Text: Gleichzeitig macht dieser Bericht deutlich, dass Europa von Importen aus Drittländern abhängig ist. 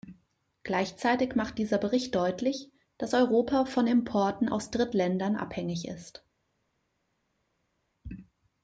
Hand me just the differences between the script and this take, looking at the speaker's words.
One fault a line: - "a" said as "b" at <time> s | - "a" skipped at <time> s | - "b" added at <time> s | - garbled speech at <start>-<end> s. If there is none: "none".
none